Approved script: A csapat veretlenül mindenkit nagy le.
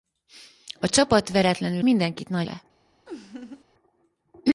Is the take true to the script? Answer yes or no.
yes